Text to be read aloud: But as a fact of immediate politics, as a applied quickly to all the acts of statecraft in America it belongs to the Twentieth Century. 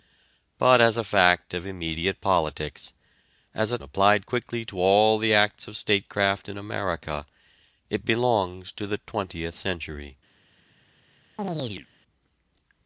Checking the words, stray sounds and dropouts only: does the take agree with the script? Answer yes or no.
no